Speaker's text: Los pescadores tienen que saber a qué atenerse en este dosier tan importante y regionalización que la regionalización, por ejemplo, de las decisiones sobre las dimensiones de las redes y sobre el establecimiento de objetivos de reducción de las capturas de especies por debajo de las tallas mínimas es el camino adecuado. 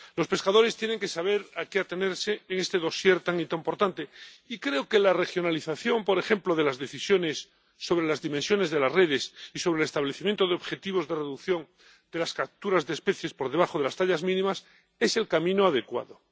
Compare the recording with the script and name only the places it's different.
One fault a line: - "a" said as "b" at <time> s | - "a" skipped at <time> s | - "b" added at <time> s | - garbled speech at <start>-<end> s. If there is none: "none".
- "regionalización" said as "creo" at 4.6 s